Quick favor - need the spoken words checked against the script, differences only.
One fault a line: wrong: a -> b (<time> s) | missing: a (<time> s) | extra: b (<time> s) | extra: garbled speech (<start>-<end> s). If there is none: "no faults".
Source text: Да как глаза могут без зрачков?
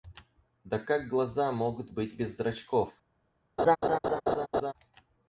extra: быть (1.9 s)